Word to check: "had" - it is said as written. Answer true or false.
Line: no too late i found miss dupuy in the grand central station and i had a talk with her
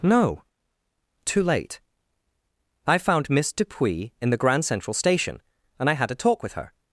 true